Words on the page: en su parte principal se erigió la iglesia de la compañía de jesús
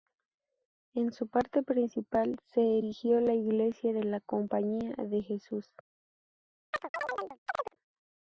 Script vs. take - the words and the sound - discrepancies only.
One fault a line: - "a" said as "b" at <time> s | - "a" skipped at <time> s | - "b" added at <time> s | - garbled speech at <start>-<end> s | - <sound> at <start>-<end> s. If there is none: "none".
- chirp at 6.7-7.8 s